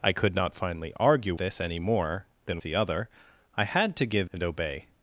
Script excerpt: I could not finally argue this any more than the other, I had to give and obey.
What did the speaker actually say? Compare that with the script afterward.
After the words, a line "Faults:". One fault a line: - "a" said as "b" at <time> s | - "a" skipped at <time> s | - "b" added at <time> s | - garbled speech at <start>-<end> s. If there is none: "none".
I could not finally argue this any more than the other, I had to give and obey.
Faults:
none